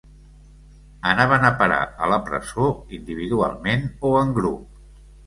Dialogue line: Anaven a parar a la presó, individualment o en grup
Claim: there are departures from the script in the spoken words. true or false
false